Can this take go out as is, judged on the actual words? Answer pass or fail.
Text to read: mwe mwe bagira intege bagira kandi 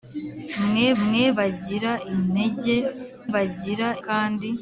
pass